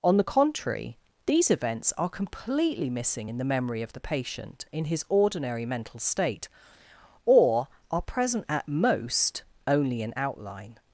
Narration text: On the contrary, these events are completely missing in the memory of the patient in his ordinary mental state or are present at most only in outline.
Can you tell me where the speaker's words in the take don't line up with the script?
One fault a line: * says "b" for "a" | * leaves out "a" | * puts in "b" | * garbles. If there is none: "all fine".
all fine